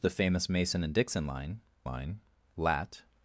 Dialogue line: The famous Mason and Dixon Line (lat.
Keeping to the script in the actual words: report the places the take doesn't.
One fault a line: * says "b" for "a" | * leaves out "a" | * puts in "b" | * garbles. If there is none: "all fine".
* puts in "Line"